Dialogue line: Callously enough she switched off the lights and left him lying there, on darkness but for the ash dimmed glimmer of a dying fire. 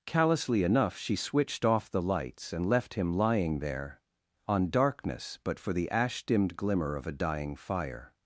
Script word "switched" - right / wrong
right